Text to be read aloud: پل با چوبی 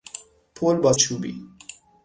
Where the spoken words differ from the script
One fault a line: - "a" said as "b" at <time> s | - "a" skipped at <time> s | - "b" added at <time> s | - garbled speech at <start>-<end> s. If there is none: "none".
none